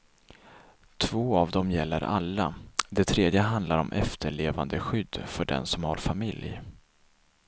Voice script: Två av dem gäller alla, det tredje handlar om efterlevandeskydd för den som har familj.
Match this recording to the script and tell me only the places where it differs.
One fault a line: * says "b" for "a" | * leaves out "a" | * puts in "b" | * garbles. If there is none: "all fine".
all fine